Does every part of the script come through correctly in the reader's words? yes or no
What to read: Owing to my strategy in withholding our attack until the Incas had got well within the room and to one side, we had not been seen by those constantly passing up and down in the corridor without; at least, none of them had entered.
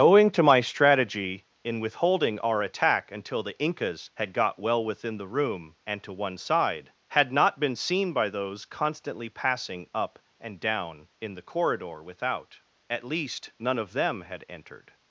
no